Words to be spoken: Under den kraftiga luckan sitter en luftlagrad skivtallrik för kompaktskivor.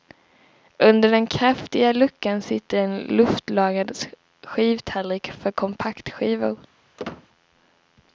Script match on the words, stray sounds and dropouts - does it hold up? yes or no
no